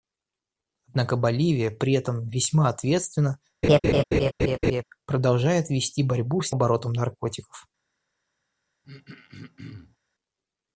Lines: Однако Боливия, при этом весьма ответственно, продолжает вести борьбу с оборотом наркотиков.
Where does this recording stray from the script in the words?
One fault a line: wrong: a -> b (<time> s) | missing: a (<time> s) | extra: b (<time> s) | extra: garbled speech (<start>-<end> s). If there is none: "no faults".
no faults